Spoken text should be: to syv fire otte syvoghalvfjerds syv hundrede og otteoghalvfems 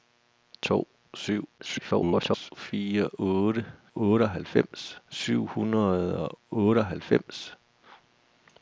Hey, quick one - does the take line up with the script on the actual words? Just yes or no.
no